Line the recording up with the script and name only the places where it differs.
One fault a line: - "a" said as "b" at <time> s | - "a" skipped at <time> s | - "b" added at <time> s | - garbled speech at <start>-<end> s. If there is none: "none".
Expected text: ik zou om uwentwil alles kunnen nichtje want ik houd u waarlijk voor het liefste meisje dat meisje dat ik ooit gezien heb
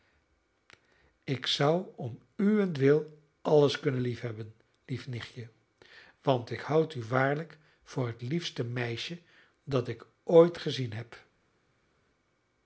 - "liefhebben lief" added at 4.0 s
- "meisje dat" skipped at 9.9 s